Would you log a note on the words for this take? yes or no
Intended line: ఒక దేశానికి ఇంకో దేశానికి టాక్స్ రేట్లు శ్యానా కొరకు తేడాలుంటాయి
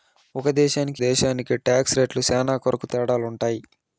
yes